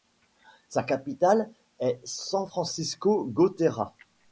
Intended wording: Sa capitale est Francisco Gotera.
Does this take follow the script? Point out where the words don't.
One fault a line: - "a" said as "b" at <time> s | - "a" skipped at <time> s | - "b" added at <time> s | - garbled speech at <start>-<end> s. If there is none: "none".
- "San" added at 2.0 s